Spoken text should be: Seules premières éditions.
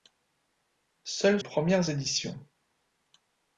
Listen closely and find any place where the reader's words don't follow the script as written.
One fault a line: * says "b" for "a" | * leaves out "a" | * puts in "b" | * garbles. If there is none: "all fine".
all fine